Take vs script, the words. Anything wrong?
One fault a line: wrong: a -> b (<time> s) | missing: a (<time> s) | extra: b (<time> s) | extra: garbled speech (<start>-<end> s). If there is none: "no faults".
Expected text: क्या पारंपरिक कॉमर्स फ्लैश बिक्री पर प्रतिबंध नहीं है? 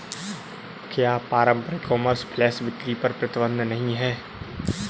no faults